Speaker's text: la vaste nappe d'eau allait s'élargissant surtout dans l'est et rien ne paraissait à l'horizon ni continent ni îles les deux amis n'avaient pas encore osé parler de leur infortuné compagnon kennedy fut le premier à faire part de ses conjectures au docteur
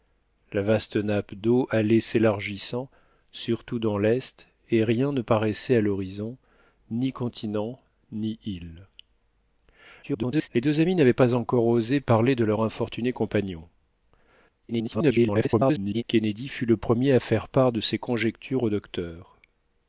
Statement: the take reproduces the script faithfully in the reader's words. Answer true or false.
false